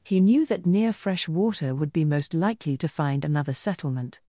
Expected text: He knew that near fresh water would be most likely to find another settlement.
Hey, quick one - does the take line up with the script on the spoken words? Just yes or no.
yes